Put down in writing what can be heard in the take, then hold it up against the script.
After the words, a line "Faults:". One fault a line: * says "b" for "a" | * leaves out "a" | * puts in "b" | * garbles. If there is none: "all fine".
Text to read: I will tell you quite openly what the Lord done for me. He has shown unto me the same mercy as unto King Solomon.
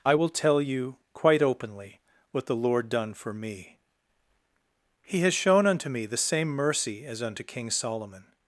I will tell you quite openly what the Lord done for me. He has shown unto me the same mercy as unto King Solomon.
Faults:
all fine